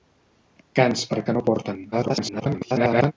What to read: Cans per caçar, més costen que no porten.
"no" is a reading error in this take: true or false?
false